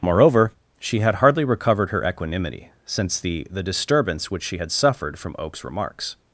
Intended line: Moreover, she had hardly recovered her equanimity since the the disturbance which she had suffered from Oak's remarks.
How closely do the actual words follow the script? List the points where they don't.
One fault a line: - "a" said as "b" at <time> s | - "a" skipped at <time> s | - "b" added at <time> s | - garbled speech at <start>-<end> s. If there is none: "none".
none